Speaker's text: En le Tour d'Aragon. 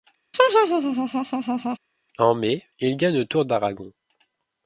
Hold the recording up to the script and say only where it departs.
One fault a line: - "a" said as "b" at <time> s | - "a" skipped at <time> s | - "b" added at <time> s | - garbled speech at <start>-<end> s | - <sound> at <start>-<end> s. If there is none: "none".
- laugh at 0.3-1.8 s
- "mai il gagne" added at 2.3 s